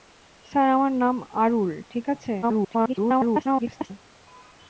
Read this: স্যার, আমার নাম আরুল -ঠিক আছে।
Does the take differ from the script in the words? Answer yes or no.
yes